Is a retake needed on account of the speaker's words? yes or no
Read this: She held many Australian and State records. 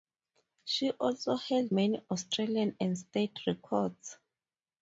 yes